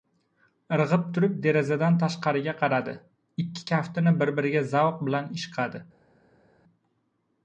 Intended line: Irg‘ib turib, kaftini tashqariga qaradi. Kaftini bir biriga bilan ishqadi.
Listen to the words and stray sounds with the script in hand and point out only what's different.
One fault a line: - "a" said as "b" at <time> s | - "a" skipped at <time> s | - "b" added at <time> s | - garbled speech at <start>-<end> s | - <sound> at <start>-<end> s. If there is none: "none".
- "kaftini" said as "derazadan" at 1.4 s
- "Ikki" added at 3.4 s
- "zavq" added at 4.8 s